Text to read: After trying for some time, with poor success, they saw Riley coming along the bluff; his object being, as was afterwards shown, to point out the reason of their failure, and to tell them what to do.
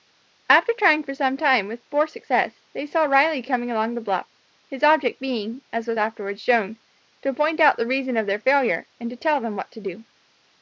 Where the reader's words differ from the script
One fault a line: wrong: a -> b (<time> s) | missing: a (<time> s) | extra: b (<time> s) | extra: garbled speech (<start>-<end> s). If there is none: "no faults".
no faults